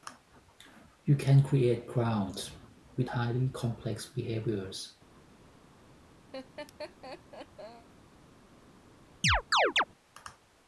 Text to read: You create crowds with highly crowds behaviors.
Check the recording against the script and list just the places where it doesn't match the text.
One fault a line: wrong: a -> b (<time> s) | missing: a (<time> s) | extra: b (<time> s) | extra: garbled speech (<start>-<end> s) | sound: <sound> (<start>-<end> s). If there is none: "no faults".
extra: can (1.1 s)
wrong: crowds -> complex (3.5 s)
sound: laugh (6.3-7.9 s)
sound: chirp (9.2-9.8 s)